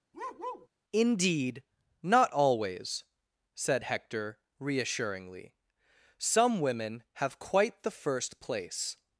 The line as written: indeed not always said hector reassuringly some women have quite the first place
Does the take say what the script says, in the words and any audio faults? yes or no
no